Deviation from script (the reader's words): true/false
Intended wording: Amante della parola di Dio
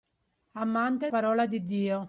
true